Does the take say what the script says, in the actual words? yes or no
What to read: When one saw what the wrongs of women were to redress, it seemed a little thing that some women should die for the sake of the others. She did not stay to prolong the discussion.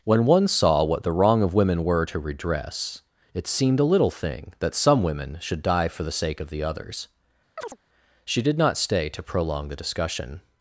no